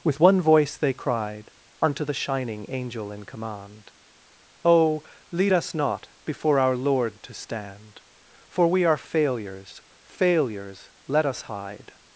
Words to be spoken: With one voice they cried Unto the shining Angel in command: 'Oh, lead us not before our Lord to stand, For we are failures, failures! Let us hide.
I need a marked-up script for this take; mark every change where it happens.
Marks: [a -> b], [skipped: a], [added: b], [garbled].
With one voice they cried Unto the shining Angel in command: 'Oh, lead us not before our Lord to stand, For we are failures, failures! Let us hide.